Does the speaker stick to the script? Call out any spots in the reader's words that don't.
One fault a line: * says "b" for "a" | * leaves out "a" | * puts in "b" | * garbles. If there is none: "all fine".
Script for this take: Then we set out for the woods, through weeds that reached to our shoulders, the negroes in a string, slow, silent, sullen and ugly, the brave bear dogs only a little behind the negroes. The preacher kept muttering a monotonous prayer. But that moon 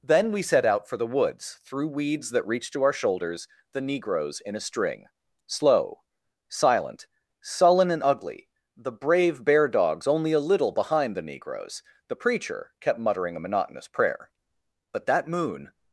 all fine